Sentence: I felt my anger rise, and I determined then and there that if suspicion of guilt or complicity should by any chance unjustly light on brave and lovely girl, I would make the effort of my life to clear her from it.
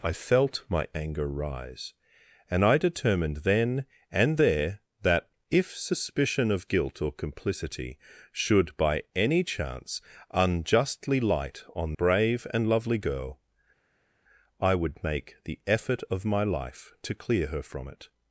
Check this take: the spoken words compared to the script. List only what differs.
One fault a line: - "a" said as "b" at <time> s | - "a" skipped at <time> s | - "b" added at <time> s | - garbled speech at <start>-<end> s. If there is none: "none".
none